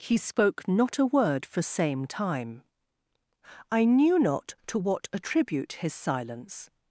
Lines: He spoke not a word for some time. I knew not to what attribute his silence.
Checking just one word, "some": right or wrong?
wrong